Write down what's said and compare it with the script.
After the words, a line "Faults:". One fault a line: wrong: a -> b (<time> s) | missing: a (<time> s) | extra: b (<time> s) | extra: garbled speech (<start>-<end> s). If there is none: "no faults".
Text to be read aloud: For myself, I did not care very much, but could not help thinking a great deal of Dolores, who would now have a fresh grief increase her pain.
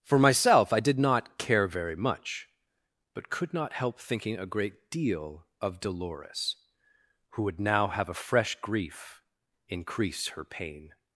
For myself, I did not care very much, but could not help thinking a great deal of Dolores, who would now have a fresh grief increase her pain.
Faults:
no faults